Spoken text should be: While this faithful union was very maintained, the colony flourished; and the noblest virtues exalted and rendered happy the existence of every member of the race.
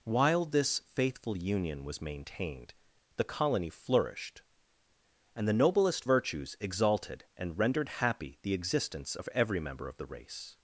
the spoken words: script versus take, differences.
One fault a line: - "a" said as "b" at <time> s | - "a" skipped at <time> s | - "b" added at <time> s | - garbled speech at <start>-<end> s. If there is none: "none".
- "very" skipped at 2.0 s